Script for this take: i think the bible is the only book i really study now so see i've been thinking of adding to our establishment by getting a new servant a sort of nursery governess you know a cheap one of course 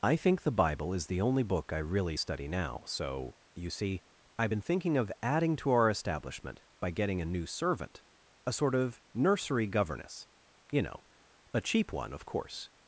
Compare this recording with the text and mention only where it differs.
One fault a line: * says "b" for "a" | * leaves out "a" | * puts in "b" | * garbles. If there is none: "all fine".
* puts in "you"